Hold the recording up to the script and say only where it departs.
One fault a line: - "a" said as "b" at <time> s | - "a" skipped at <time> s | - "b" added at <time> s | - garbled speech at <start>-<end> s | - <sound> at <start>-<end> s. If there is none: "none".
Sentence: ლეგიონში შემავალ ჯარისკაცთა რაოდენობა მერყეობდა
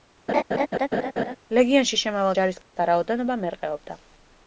- laugh at 0.3-1.4 s
- dropout at 2.6-2.8 s